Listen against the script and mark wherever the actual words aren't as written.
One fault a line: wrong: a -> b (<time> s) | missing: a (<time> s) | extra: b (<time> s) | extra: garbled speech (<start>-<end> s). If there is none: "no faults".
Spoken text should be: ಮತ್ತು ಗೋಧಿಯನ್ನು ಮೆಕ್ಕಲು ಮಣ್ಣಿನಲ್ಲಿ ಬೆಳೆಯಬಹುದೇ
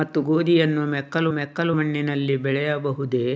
extra: ಮೆಕ್ಕಲು (1.4 s)